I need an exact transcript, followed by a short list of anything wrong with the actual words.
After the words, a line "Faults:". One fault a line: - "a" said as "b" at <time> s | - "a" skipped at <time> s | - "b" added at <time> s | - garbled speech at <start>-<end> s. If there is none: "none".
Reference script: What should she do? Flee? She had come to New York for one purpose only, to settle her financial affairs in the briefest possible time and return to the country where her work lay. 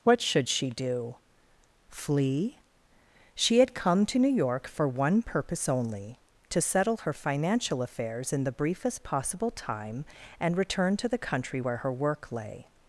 What should she do? Flee? She had come to New York for one purpose only, to settle her financial affairs in the briefest possible time and return to the country where her work lay.
Faults:
none